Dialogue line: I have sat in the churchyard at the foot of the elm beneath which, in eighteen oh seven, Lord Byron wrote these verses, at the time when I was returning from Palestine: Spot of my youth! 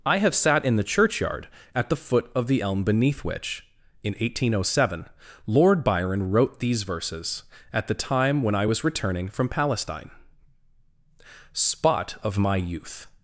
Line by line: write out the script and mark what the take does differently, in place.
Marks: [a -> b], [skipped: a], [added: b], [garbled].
I have sat in the churchyard at the foot of the elm beneath which, in eighteen oh seven, Lord Byron wrote these verses, at the time when I was returning from Palestine: Spot of my youth!